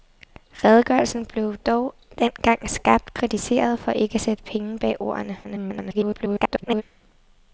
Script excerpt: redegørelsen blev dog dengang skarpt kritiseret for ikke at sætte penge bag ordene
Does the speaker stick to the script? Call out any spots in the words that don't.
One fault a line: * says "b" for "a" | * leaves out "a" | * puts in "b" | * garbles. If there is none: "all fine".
* garbles